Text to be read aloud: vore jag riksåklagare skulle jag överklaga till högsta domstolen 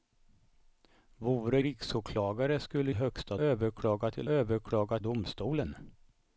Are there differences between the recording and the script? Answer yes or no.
yes